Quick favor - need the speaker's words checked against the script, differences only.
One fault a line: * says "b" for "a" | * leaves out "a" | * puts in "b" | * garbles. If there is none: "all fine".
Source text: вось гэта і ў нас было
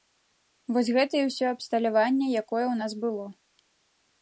* puts in "ўсё абсталяванне якое"